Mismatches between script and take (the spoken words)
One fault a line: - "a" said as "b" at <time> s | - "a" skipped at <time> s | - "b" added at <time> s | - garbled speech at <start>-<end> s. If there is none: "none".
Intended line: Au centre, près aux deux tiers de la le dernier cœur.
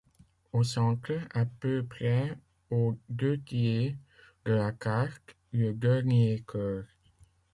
- "à peu" added at 1.3 s
- "carte" added at 4.7 s